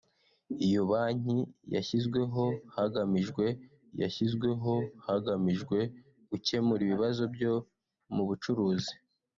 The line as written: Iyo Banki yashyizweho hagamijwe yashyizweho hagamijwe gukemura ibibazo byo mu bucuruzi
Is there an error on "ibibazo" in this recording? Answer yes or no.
no